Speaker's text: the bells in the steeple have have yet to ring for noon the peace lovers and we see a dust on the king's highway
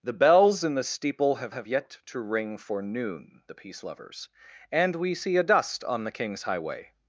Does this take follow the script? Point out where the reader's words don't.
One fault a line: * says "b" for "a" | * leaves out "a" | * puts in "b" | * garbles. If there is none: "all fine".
all fine